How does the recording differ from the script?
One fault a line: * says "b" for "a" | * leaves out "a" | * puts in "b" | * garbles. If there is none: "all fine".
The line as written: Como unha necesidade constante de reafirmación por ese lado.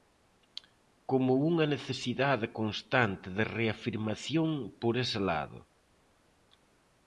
all fine